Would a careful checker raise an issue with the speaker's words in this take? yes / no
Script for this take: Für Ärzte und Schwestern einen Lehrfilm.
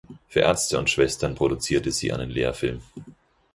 yes